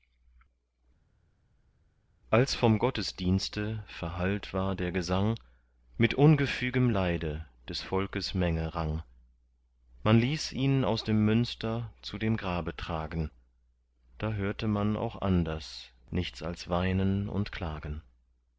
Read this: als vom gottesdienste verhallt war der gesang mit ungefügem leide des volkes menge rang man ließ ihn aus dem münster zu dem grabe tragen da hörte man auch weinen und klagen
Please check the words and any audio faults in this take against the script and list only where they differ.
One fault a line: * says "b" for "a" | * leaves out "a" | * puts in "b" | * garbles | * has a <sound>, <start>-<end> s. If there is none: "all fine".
* puts in "anders nichts als"